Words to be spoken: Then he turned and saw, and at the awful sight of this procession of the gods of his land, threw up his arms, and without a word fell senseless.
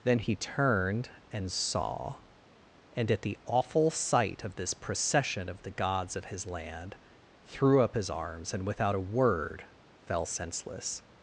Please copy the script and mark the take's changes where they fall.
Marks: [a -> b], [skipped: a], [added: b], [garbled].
Then he turned and saw, and at the awful sight of this procession of the gods of his land, threw up his arms, and without a word fell senseless.